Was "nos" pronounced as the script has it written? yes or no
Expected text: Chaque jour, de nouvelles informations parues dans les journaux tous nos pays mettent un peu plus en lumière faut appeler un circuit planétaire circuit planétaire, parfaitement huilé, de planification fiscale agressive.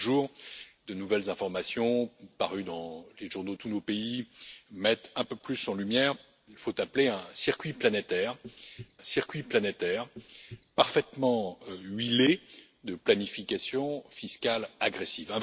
yes